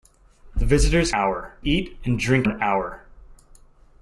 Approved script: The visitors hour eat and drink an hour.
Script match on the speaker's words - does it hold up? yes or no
yes